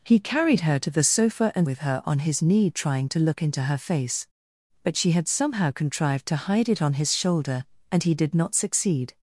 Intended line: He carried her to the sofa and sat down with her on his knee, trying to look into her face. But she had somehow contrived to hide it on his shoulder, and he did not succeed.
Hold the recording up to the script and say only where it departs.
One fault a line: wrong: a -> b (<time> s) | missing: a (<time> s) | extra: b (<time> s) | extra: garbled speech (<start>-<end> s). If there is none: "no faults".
missing: sat down (1.7 s)